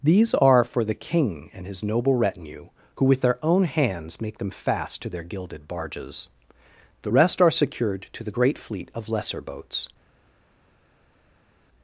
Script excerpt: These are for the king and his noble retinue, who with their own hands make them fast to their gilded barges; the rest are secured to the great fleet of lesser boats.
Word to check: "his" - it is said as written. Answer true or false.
true